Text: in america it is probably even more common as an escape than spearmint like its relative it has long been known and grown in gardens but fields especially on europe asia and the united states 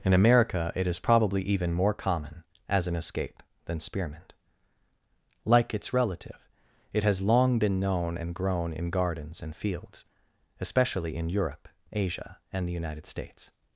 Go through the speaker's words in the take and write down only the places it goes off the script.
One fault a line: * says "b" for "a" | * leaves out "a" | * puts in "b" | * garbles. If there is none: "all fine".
* says "and" for "but"
* says "in" for "on"